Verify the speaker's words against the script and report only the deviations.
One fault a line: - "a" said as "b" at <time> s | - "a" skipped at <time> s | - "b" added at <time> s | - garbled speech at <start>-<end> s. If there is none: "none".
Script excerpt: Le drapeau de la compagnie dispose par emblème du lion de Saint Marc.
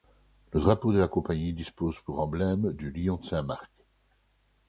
- "par" said as "pour" at 2.0 s